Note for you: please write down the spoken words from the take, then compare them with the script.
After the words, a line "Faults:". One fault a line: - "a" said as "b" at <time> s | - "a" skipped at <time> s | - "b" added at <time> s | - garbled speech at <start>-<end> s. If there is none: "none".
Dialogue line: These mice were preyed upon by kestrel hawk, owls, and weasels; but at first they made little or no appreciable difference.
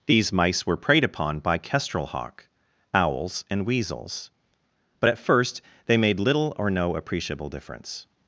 These mice were preyed upon by kestrel hawk, owls, and weasels; but at first they made little or no appreciable difference.
Faults:
none